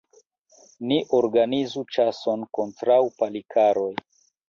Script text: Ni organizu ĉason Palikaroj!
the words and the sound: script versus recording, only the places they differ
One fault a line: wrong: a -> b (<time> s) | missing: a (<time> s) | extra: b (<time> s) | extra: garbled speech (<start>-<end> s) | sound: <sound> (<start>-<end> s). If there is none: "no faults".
extra: kontraŭ (2.6 s)